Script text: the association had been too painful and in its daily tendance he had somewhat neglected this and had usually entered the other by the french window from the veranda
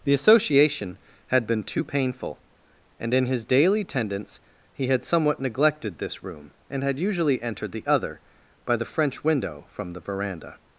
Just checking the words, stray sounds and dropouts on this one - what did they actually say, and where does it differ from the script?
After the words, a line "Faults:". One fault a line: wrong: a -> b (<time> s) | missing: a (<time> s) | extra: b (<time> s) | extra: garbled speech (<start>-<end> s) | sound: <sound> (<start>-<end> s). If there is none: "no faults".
the association had been too painful and in his daily tendance he had somewhat neglected this room and had usually entered the other by the french window from the veranda
Faults:
wrong: its -> his (3.3 s)
extra: room (6.2 s)